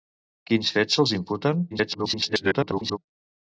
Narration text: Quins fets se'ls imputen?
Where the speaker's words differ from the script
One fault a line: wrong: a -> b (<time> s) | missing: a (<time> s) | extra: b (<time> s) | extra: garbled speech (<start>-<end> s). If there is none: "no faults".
extra: garbled speech (1.7-3.0 s)